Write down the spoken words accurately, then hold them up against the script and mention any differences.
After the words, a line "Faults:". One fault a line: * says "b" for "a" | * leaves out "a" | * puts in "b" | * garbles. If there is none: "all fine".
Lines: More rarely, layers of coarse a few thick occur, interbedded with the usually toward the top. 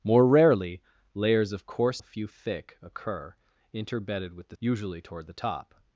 More rarely, layers of coarse a few thick occur, interbedded with the usually toward the top.
Faults:
all fine